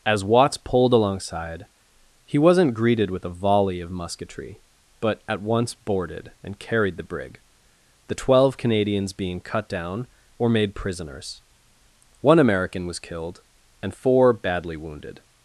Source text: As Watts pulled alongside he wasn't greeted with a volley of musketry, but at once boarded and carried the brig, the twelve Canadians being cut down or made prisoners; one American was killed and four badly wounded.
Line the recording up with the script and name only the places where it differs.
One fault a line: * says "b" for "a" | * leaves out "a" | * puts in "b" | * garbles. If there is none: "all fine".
all fine